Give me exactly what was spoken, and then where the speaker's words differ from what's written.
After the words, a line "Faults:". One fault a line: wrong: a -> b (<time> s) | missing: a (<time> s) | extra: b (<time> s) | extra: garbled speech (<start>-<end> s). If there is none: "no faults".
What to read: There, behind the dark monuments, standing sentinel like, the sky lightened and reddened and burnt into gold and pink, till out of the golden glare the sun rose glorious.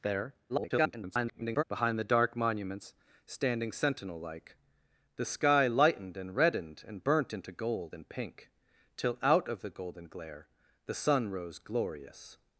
There, [garbled] behind the dark monuments, standing sentinel like, the sky lightened and reddened and burnt into gold and pink, till out of the golden glare the sun rose glorious.
Faults:
extra: garbled speech (0.5-1.6 s)